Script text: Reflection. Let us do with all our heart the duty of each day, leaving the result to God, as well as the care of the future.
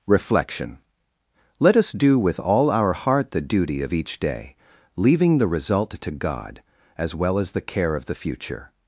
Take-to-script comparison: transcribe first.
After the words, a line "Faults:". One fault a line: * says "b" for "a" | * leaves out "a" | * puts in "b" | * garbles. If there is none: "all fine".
Reflection. Let us do with all our heart the duty of each day, leaving the result to God, as well as the care of the future.
Faults:
all fine